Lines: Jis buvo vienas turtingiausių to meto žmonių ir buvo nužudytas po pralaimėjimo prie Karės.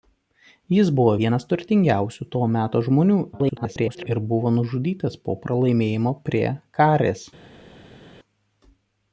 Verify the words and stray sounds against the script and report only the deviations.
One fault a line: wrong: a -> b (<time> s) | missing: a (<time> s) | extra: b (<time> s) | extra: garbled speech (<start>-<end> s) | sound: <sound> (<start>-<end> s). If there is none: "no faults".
extra: garbled speech (3.3-4.1 s)